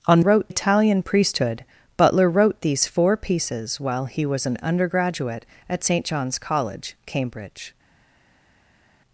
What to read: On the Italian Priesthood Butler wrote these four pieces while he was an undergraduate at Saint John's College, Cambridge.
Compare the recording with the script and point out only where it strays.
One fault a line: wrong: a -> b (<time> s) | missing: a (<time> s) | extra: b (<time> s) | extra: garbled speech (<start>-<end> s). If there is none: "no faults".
wrong: the -> wrote (0.2 s)